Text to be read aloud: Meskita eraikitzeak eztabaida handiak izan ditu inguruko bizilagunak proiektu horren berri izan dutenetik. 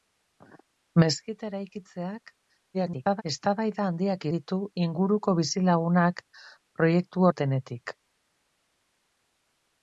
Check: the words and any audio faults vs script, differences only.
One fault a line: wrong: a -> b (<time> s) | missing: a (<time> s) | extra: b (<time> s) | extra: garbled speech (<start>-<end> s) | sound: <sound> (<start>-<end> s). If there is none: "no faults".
extra: garbled speech (2.7-3.2 s)
missing: izan (4.2 s)
missing: horren berri izan (7.3 s)